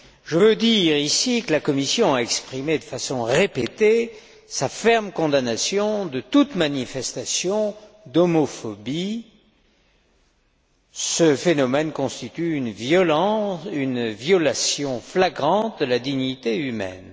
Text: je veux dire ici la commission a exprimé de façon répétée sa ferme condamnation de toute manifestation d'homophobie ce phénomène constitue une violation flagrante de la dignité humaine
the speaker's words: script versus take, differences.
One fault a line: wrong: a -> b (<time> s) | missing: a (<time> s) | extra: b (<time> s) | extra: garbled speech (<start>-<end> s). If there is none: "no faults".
extra: que (1.4 s)